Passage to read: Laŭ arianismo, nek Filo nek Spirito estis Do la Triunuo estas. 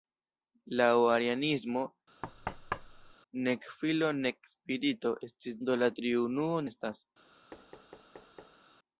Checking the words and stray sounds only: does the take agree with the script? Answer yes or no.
no